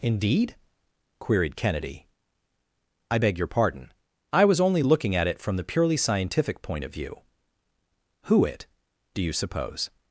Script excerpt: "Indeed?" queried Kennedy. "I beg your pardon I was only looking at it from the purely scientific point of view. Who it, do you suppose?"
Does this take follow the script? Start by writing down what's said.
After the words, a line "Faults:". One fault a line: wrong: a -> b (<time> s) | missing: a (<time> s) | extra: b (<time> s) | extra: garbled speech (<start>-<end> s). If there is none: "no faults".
"Indeed?" queried Kennedy. "I beg your pardon I was only looking at it from the purely scientific point of view. Who it, do you suppose?"
Faults:
no faults